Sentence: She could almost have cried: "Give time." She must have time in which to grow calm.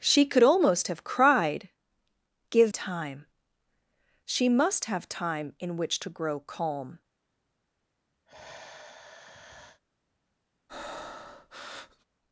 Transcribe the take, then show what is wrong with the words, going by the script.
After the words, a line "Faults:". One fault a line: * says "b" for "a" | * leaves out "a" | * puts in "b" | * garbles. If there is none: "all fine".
She could almost have cried: "Give time." She must have time in which to grow calm.
Faults:
all fine